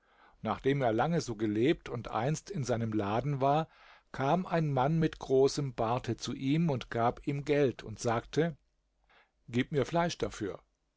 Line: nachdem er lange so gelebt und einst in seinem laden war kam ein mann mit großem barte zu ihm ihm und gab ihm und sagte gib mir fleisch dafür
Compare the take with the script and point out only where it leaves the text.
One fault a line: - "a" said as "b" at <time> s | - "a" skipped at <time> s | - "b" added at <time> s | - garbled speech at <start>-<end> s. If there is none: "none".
- "ihm" skipped at 6.7 s
- "geld" added at 7.4 s